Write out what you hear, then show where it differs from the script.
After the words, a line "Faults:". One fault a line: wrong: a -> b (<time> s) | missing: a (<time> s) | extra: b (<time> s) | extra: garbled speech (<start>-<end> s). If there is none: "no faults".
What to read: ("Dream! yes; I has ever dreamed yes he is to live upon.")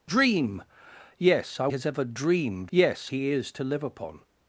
("Dream! yes; I has ever dreamed yes he is to live upon.")
Faults:
no faults